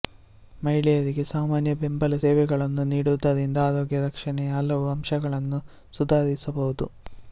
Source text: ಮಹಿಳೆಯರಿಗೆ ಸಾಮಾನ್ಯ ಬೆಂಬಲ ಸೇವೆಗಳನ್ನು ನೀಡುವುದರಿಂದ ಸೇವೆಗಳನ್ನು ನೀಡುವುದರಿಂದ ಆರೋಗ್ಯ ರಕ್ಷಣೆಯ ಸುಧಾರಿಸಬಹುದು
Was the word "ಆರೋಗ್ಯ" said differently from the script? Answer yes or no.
yes